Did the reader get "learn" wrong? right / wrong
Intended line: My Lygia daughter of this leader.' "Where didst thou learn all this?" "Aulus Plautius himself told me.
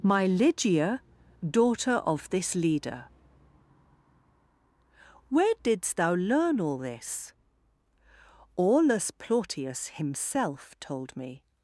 right